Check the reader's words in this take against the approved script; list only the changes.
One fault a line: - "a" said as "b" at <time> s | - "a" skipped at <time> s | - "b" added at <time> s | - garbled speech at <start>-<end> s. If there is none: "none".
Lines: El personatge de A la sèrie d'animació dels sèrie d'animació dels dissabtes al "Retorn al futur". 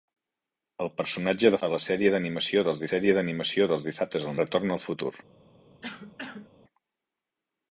none